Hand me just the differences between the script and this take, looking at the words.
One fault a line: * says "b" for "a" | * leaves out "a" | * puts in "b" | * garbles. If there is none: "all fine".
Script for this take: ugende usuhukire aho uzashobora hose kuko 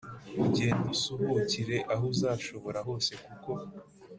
all fine